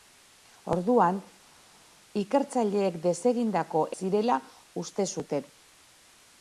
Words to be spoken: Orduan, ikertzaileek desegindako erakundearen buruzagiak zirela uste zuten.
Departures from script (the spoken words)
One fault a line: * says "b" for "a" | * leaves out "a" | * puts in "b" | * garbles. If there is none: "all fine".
* leaves out "erakundearen buruzagiak"